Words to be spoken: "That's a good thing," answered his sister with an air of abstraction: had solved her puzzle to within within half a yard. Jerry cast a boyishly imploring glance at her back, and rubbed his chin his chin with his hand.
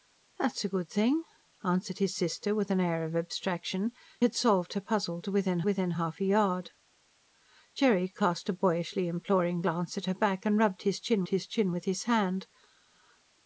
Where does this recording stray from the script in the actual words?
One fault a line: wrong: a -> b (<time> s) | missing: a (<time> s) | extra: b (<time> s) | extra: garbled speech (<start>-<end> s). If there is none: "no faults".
no faults